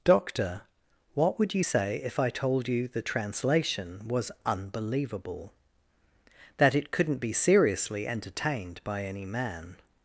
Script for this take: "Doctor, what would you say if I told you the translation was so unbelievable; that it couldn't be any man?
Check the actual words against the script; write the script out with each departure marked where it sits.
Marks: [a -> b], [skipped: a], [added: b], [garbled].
"Doctor, what would you say if I told you the translation was [skipped: so] unbelievable; that it couldn't be [added: seriously entertained by] any man?